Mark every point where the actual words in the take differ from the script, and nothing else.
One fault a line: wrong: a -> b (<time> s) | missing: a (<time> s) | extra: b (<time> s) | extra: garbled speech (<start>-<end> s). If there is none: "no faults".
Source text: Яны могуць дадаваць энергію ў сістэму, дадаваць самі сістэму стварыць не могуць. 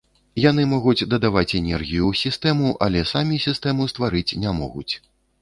wrong: дадаваць -> але (2.9 s)